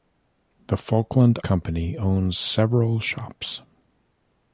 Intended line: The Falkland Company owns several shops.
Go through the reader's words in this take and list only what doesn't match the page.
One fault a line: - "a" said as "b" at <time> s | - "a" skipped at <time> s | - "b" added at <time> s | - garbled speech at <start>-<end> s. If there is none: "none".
none